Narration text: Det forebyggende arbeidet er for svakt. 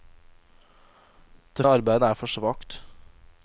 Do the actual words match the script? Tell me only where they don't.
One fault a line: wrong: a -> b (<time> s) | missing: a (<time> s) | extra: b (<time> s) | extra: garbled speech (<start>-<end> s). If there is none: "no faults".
missing: forebyggende (1.6 s)